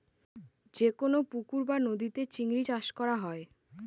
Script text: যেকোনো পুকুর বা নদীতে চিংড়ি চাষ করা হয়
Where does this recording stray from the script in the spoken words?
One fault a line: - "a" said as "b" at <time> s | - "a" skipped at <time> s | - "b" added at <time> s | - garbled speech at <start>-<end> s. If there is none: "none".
none